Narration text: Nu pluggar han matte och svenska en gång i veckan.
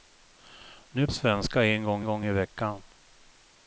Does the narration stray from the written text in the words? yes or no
yes